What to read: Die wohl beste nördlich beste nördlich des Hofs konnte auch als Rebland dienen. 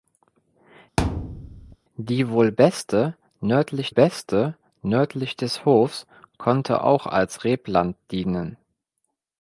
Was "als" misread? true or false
false